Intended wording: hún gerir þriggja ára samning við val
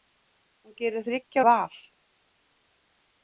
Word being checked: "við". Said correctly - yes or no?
no